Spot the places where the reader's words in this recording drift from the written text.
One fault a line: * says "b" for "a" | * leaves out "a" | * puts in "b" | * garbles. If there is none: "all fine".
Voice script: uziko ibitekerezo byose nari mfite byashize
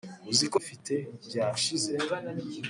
* leaves out "ibitekerezo byose nari"